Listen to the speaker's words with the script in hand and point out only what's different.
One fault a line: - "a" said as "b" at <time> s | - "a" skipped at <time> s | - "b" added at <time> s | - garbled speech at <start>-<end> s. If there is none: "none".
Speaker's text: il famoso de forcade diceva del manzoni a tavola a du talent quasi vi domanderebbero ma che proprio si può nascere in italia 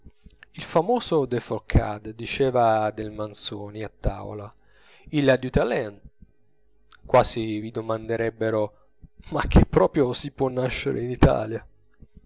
- "il" added at 5.1 s